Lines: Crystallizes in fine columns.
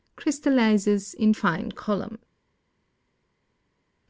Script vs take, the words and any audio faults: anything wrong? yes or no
no